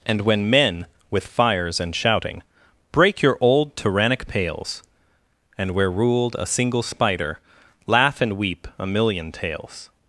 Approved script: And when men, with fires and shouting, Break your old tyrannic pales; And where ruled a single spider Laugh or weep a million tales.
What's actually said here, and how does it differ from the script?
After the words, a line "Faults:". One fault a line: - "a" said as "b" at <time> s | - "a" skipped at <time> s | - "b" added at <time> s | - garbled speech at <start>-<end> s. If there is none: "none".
And when men, with fires and shouting, Break your old tyrannic pales; And where ruled a single spider Laugh and weep a million tales.
Faults:
- "or" said as "and" at 8.2 s